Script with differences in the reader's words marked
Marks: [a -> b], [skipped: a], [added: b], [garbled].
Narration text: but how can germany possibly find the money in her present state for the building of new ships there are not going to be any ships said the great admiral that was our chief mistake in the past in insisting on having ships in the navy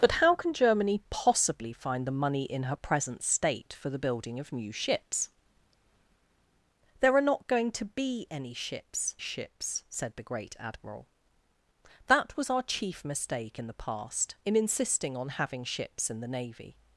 but how can germany possibly find the money in her present state for the building of new ships there are not going to be any ships [added: ships] said the great admiral that was our chief mistake in the past in insisting on having ships in the navy